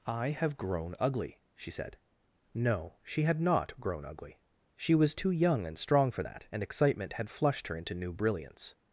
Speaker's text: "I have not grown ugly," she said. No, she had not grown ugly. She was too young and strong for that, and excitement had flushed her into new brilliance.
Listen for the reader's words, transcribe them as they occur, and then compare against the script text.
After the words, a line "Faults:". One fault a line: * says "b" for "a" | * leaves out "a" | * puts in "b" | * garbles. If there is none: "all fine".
"I have grown ugly," she said. No, she had not grown ugly. She was too young and strong for that, and excitement had flushed her into new brilliance.
Faults:
* leaves out "not"